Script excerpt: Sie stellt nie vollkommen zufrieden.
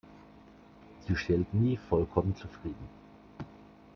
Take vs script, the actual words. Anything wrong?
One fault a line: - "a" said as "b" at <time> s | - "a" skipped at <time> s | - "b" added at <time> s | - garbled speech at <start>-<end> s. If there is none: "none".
none